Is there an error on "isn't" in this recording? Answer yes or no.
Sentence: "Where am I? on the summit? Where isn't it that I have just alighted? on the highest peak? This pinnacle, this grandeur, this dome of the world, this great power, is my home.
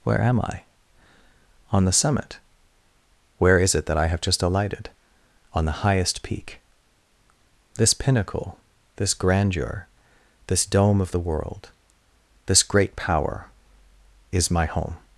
yes